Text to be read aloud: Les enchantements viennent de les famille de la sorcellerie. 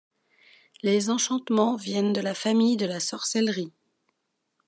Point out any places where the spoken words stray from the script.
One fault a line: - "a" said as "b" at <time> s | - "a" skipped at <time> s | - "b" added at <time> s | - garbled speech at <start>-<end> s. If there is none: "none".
- "les" said as "la" at 2.2 s